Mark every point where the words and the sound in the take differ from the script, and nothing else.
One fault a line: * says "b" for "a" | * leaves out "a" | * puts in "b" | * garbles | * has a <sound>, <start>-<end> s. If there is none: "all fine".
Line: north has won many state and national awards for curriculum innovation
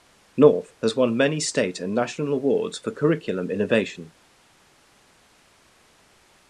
all fine